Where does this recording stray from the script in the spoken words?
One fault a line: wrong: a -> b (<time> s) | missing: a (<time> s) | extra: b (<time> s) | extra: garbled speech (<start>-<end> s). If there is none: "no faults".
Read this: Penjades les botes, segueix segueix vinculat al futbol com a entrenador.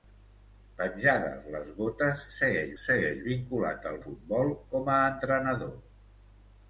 no faults